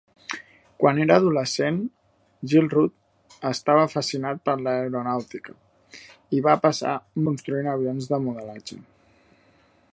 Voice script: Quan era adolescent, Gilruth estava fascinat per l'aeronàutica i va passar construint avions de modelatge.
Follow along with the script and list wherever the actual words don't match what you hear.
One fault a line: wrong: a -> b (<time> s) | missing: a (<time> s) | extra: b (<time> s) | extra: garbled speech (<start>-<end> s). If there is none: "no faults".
no faults